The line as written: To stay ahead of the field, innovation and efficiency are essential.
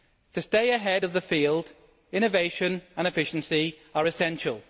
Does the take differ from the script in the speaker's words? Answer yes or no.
no